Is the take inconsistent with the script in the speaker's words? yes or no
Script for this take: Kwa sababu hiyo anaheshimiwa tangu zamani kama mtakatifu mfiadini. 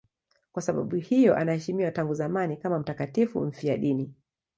no